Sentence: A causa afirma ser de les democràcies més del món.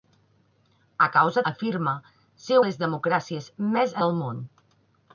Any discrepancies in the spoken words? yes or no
no